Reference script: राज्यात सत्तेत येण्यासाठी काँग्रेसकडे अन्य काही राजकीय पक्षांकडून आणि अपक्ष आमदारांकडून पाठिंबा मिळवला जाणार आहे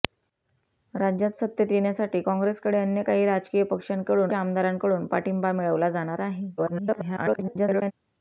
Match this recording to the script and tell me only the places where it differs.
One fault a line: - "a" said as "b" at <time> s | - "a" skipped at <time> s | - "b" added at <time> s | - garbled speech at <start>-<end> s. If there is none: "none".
- "आणि अपक्ष" skipped at 4.3 s
- garbled speech at 6.6-7.9 s